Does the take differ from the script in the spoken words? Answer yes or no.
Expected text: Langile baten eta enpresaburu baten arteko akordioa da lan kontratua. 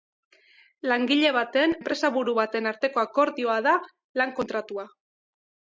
yes